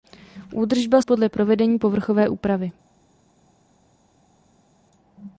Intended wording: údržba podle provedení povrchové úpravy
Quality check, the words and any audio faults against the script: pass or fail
pass